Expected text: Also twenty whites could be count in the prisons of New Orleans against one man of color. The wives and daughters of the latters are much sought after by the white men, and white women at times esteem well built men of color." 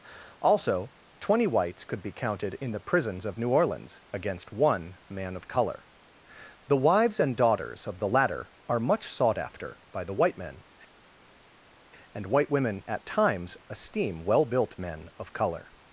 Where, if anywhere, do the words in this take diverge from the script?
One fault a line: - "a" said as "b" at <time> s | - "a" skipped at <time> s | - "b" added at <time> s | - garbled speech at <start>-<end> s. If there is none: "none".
- "count" said as "counted" at 2.1 s
- "latters" said as "latter" at 8.1 s